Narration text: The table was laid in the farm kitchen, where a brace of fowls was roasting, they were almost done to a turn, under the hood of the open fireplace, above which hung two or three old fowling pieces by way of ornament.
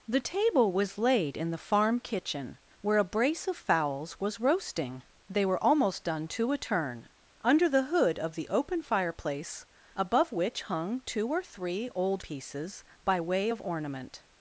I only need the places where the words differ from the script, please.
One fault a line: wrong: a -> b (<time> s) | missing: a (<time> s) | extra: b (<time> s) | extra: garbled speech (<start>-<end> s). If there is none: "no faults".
missing: fowling (12.2 s)